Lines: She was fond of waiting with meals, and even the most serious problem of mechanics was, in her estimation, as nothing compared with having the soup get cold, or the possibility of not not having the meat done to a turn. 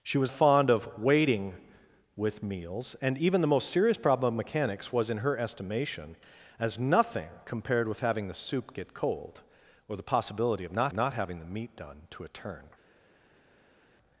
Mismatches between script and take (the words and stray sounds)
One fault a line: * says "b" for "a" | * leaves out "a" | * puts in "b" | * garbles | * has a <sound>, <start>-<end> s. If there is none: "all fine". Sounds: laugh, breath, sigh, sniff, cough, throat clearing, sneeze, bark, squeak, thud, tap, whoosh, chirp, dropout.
all fine